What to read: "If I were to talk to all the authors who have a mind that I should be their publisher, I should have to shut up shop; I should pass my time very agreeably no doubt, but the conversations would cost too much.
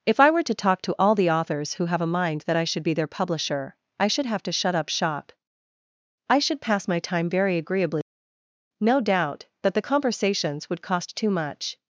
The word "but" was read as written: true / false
false